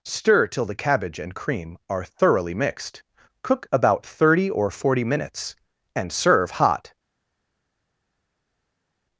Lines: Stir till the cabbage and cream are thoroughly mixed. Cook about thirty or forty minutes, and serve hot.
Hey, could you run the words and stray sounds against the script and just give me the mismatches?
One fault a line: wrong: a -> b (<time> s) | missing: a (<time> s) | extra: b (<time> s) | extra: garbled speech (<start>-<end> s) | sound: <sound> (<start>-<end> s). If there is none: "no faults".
no faults